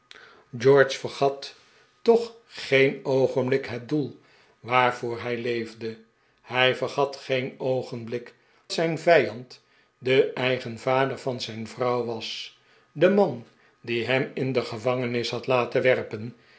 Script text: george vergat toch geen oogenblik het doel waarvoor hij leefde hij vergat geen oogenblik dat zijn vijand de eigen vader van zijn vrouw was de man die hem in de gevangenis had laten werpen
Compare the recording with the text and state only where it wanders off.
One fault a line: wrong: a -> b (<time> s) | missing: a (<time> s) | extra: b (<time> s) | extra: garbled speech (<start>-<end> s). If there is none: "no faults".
missing: dat (8.3 s)